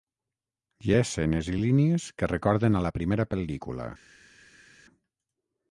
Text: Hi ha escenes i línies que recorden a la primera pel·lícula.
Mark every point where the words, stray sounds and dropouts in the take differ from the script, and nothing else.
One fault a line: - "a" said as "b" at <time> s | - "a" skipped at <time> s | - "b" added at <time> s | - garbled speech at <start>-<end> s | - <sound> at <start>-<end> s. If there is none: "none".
none